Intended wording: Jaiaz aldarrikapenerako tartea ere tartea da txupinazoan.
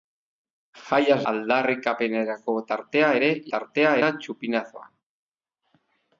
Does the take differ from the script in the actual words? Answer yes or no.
no